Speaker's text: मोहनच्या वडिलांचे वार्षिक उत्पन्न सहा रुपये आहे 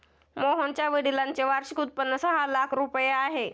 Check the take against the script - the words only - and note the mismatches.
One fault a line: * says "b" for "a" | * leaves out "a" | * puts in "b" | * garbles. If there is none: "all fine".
* puts in "लाख"